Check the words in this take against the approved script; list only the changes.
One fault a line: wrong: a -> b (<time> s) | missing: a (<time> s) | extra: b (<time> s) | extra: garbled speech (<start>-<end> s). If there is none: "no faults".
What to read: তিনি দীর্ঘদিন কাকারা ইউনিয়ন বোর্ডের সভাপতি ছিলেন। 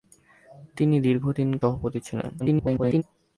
missing: কাকারা ইউনিয়ন বোর্ডের (1.5 s)
extra: garbled speech (2.4-3.0 s)